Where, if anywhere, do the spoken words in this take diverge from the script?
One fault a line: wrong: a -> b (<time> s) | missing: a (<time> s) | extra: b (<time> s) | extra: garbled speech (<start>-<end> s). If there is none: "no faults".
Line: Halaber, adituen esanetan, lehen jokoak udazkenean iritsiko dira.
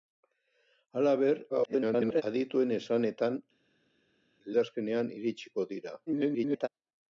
extra: garbled speech (1.5-2.2 s)
missing: lehen jokoak (3.4 s)
extra: garbled speech (6.1-6.7 s)